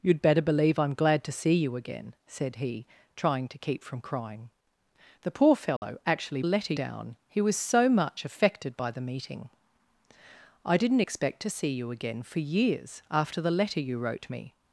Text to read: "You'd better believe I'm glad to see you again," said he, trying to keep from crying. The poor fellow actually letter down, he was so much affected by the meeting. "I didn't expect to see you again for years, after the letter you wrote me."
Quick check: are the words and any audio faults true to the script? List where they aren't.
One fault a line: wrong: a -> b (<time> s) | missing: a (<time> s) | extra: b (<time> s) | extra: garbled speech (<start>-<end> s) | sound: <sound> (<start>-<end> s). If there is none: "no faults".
sound: dropout (5.8-5.8 s)